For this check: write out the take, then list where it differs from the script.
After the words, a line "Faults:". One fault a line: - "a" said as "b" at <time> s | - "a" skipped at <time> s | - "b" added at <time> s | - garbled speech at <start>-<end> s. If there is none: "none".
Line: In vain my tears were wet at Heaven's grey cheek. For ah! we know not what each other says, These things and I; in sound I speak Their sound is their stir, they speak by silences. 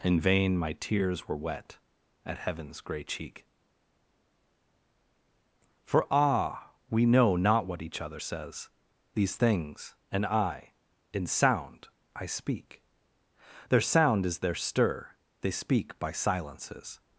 In vain my tears were wet at Heaven's grey cheek. For ah! we know not what each other says, These things and I; in sound I speak Their sound is their stir, they speak by silences.
Faults:
none